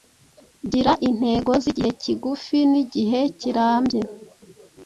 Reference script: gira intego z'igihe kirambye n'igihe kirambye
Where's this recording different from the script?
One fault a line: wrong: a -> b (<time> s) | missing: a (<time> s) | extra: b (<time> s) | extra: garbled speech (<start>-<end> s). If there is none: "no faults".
wrong: kirambye -> kigufi (2.0 s)